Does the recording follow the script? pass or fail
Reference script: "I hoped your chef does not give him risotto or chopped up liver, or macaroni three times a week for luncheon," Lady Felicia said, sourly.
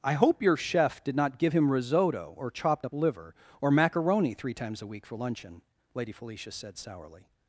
fail